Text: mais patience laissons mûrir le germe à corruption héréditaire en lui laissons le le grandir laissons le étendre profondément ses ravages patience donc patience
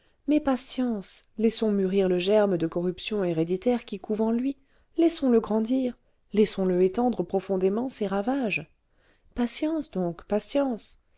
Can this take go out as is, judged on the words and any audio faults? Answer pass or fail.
fail